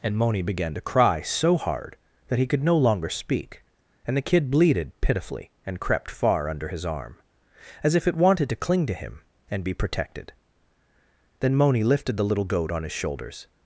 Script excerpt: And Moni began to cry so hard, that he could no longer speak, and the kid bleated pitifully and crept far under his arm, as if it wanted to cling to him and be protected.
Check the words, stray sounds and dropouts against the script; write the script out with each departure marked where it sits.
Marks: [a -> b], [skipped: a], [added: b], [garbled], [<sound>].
And Moni began to cry so hard, that he could no longer speak, and the kid bleated pitifully and crept far under his arm, as if it wanted to cling to him and be protected. [added: Then Moni lifted the little goat on his shoulders]